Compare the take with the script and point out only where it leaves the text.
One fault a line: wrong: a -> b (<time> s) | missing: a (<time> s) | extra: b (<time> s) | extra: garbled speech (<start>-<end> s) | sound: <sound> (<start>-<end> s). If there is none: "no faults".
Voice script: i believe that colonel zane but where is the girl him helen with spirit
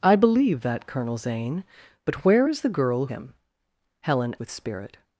no faults